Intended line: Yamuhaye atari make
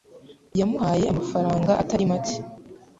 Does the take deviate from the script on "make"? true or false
false